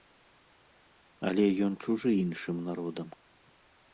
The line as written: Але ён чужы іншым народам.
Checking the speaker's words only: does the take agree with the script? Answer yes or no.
yes